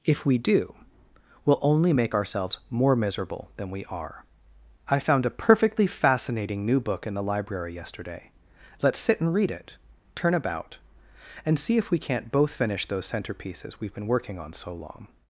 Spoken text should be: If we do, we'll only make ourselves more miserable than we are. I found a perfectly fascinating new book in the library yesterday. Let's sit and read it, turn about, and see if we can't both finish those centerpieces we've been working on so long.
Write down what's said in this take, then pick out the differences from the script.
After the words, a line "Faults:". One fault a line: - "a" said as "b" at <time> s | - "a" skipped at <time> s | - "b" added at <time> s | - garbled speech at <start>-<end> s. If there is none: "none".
If we do, we'll only make ourselves more miserable than we are. I found a perfectly fascinating new book in the library yesterday. Let's sit and read it, turn about, and see if we can't both finish those centerpieces we've been working on so long.
Faults:
none